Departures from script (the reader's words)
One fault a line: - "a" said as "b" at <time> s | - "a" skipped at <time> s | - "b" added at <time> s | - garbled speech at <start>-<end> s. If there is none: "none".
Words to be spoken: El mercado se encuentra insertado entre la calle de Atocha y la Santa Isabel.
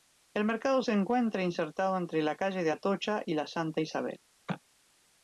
none